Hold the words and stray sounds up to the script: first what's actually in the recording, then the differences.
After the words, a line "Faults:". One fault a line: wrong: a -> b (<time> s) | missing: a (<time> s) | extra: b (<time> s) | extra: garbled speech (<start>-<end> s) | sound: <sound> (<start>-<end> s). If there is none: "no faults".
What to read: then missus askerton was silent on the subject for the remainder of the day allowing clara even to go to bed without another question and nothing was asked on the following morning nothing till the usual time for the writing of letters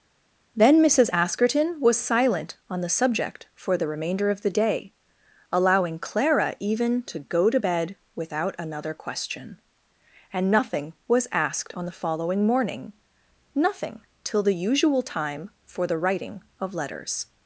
then missus askerton was silent on the subject for the remainder of the day allowing clara even to go to bed without another question and nothing was asked on the following morning nothing till the usual time for the writing of letters
Faults:
no faults